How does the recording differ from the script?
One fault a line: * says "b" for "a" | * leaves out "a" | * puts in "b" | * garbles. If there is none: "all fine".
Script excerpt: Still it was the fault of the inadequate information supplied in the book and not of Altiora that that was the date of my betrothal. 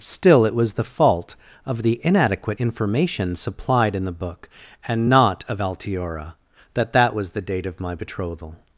all fine